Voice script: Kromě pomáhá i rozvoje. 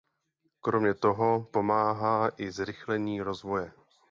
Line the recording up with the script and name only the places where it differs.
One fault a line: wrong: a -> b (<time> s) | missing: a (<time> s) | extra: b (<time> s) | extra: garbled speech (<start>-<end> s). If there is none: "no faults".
extra: toho (0.9 s)
extra: zrychlení (2.5 s)